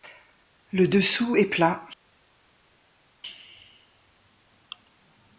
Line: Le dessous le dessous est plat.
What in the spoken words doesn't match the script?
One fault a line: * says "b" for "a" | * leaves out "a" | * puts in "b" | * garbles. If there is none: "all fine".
* leaves out "le dessous"